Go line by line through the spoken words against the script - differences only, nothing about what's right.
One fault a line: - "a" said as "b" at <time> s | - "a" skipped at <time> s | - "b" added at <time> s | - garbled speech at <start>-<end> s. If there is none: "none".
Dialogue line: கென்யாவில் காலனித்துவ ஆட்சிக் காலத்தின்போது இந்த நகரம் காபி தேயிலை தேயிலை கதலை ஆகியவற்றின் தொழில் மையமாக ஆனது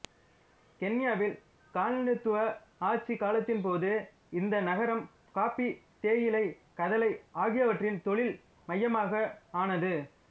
- "தேயிலை" skipped at 6.4 s